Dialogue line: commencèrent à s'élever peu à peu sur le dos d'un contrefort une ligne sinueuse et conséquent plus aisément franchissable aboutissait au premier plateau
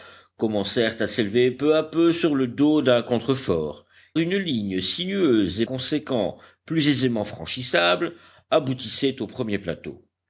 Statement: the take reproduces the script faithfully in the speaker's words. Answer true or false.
true